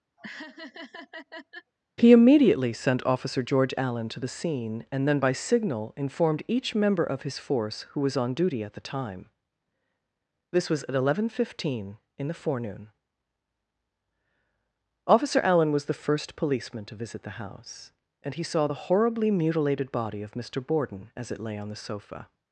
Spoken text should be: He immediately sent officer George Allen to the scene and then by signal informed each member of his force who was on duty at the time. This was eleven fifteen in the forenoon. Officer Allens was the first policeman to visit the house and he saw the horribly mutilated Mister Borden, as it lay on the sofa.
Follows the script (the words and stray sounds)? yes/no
no